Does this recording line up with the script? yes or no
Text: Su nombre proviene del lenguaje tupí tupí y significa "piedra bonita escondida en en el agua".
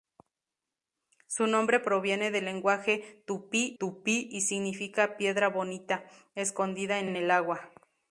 yes